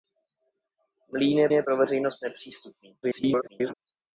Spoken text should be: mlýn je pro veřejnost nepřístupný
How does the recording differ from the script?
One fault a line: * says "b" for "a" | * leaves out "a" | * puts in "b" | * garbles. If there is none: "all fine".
* puts in "je"
* garbles